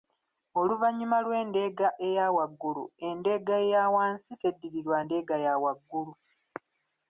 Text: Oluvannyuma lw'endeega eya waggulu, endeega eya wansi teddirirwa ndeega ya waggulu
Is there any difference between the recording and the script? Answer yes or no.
no